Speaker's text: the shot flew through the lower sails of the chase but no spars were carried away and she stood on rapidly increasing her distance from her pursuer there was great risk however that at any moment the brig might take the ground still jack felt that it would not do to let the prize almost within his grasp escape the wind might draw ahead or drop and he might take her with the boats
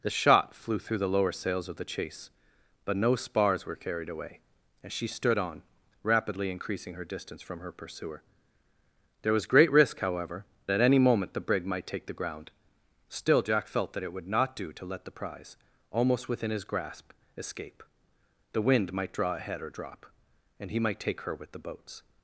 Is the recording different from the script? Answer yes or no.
yes